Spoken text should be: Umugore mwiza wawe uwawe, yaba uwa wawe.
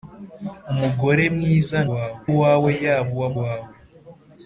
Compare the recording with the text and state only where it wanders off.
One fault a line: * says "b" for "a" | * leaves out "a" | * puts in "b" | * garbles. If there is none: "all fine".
all fine